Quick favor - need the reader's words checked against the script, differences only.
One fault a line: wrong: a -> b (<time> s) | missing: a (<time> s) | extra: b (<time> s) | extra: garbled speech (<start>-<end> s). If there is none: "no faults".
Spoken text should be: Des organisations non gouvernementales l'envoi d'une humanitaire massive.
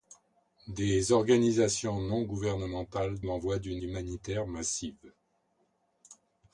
no faults